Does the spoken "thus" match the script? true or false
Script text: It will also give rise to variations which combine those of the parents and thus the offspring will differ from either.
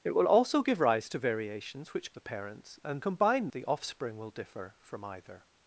false